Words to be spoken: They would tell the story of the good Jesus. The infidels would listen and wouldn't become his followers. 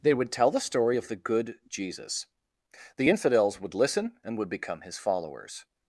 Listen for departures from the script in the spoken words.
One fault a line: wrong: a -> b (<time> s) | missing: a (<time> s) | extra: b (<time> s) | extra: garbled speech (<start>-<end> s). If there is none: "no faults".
wrong: wouldn't -> would (4.4 s)